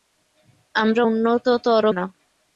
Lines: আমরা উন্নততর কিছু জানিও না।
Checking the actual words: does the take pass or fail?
fail